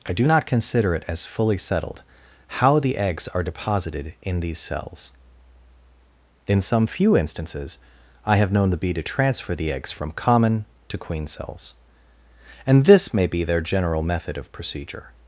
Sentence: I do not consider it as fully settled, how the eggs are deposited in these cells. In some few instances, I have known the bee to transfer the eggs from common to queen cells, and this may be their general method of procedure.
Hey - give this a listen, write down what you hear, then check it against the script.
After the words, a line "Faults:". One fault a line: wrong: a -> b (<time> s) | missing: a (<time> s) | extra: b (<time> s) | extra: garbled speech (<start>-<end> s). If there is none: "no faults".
I do not consider it as fully settled, how the eggs are deposited in these cells. In some few instances, I have known the bee to transfer the eggs from common to queen cells, and this may be their general method of procedure.
Faults:
no faults